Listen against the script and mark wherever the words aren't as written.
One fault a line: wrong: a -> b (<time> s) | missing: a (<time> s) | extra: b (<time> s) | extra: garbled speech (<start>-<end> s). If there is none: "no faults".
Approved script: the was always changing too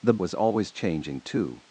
no faults